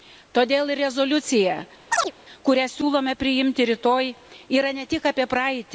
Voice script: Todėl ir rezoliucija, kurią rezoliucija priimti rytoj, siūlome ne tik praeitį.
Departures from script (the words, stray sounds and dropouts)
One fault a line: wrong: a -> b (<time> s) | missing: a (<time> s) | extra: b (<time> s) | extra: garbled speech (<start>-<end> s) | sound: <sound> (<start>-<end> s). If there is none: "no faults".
sound: chirp (1.9-2.1 s)
wrong: rezoliucija -> siūlome (2.7 s)
wrong: siūlome -> yra (4.6 s)
extra: apie (5.1 s)